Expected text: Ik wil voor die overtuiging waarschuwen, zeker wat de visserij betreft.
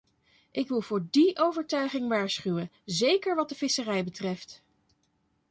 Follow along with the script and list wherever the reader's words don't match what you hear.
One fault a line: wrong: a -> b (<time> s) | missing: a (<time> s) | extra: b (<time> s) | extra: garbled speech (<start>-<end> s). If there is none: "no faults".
no faults